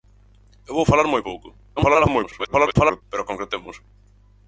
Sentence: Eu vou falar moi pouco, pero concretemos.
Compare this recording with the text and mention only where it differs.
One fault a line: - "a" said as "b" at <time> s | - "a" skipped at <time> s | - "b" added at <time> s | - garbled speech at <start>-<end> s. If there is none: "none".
- garbled speech at 1.8-3.0 s